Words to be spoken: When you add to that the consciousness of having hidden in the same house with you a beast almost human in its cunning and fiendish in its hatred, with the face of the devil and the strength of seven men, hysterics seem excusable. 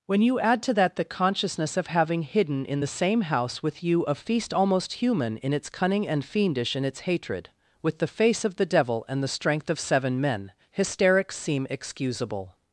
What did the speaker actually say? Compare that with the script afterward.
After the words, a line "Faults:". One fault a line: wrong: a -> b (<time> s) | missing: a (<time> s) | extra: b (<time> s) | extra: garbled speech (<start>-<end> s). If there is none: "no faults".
When you add to that the consciousness of having hidden in the same house with you a feast almost human in its cunning and fiendish in its hatred, with the face of the devil and the strength of seven men, hysterics seem excusable.
Faults:
wrong: beast -> feast (4.1 s)